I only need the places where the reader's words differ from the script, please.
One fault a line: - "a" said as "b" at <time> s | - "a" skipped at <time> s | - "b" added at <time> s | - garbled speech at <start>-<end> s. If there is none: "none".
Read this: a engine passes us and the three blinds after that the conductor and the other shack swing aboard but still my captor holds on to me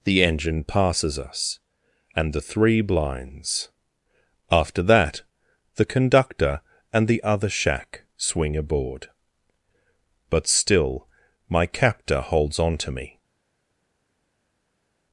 - "a" said as "the" at 0.0 s